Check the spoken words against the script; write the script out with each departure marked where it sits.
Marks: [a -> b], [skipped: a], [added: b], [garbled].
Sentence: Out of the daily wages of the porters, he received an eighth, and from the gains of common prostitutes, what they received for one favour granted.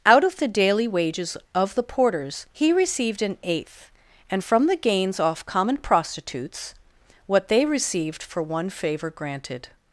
Out of the daily wages of the porters, he received an eighth, and from the gains [of -> off] common prostitutes, what they received for one favour granted.